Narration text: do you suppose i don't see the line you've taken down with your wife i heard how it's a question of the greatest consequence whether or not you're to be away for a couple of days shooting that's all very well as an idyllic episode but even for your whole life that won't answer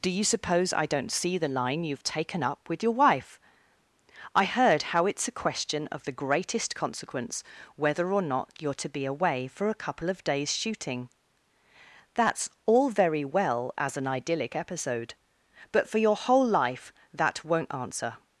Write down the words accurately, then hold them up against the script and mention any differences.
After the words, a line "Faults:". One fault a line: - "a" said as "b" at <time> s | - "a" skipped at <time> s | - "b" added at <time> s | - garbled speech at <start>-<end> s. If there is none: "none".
do you suppose i don't see the line you've taken up with your wife i heard how it's a question of the greatest consequence whether or not you're to be away for a couple of days shooting that's all very well as an idyllic episode but for your whole life that won't answer
Faults:
- "down" said as "up" at 2.4 s
- "even" skipped at 15.9 s